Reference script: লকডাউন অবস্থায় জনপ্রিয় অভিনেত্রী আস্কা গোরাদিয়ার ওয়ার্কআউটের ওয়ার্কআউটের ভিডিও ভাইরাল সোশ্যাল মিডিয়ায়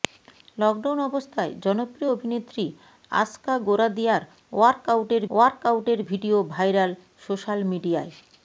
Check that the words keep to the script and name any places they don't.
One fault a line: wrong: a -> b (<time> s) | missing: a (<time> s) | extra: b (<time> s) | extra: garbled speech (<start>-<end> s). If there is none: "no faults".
no faults